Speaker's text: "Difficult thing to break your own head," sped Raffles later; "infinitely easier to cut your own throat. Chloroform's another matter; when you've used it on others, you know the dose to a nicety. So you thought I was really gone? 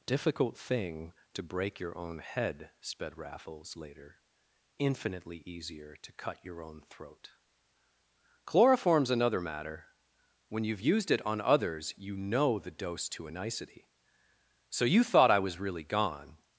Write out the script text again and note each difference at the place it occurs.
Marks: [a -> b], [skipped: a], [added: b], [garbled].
"Difficult thing to break your own head," sped Raffles later; "infinitely easier to cut your own throat. Chloroform's another matter; when you've used it on others, you know the dose to a nicety. So you thought I was really gone?